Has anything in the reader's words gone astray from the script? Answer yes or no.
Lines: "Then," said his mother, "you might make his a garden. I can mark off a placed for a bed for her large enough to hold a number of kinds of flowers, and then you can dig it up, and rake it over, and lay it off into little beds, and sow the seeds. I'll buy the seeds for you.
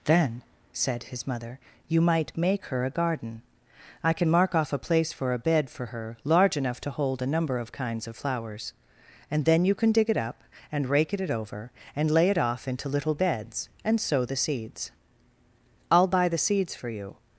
yes